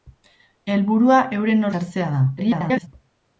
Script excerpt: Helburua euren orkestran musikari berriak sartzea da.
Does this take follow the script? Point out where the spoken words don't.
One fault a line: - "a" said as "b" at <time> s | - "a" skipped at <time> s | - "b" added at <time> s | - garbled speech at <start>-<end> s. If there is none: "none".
- "orkestran musikari berriak" skipped at 1.7 s
- garbled speech at 2.4-2.9 s